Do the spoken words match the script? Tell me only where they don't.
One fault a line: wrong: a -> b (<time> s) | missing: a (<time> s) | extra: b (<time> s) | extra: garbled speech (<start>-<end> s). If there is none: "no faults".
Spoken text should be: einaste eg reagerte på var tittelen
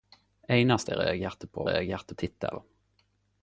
wrong: var -> reagerte (1.7 s)